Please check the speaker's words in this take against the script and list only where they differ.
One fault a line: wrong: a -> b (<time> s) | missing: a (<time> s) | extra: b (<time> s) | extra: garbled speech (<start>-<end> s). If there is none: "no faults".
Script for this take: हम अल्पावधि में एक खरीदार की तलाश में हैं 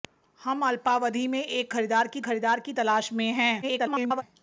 extra: खरीदार की (2.2 s)
extra: garbled speech (3.6-4.2 s)